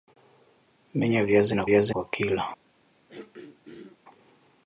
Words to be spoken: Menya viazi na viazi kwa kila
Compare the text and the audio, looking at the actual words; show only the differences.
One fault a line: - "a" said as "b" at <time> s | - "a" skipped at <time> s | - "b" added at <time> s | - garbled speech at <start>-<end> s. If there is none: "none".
none